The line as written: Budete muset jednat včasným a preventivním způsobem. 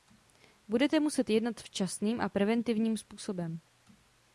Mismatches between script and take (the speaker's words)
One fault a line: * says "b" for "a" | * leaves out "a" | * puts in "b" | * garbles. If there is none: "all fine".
all fine